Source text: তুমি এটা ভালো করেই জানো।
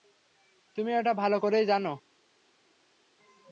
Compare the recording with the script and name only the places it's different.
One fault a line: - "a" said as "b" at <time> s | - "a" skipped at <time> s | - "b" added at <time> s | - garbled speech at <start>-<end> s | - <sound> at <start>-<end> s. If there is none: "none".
none